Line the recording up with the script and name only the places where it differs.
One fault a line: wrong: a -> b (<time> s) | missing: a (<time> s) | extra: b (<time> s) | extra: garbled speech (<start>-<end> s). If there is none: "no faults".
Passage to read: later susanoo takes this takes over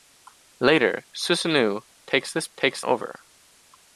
no faults